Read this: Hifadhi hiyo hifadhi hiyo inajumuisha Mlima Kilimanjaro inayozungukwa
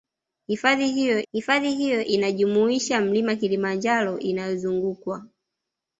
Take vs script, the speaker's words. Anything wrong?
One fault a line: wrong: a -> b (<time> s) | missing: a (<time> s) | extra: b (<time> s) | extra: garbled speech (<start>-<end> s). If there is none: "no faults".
no faults